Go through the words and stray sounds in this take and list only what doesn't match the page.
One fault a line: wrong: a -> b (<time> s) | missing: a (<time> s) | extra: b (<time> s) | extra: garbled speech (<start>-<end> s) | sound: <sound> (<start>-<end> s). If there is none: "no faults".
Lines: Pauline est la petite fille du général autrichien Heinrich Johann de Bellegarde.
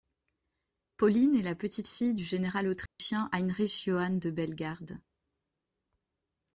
sound: dropout (2.9-3.0 s)